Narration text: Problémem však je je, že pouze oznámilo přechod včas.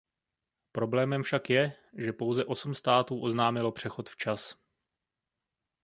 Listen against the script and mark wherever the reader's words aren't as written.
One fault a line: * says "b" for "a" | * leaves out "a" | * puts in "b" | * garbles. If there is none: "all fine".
* leaves out "je"
* puts in "osm států"